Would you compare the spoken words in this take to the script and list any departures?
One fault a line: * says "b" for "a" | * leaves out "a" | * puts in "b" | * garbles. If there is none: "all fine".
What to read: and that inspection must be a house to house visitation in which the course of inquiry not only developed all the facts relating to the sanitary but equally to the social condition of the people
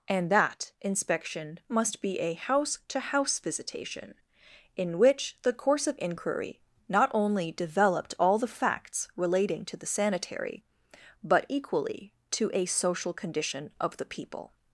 * says "a" for "the"